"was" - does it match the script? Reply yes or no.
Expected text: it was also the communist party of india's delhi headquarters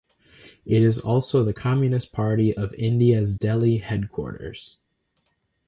no